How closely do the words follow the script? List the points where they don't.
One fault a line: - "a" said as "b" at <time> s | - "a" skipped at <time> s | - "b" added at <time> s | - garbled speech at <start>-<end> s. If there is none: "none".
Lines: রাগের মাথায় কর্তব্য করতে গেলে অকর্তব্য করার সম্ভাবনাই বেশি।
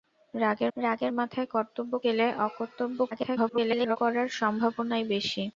- "রাগের" added at 0.8 s
- "করতে" skipped at 1.9 s
- garbled speech at 3.1-4.0 s